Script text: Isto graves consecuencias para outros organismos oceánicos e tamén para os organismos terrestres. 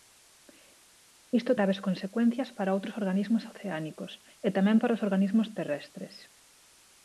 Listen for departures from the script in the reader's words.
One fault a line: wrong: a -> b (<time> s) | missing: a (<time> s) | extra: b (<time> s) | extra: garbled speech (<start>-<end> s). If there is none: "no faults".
no faults